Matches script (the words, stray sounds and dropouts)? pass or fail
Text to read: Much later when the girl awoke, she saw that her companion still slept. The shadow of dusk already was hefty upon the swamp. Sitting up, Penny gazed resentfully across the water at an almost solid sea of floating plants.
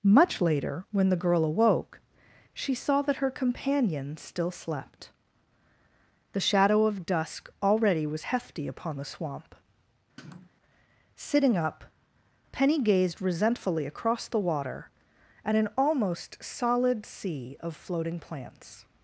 fail